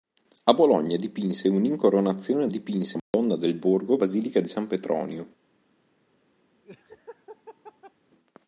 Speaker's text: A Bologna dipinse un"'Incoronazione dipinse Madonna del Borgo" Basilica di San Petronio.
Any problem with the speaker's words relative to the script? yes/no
no